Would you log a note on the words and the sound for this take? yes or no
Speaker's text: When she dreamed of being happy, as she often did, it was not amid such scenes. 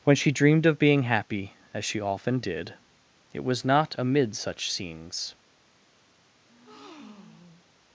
yes